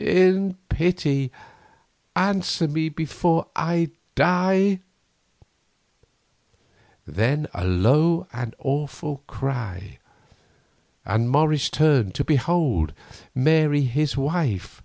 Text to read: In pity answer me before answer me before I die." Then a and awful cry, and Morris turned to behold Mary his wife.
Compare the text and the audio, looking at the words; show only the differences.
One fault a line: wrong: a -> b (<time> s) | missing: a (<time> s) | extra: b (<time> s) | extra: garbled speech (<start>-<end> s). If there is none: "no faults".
missing: answer me before (3.5 s)
extra: low (7.6 s)